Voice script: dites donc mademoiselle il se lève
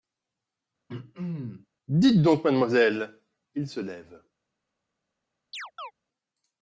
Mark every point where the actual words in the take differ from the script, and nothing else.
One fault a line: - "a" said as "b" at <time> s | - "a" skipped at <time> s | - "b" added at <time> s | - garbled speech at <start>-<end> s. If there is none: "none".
none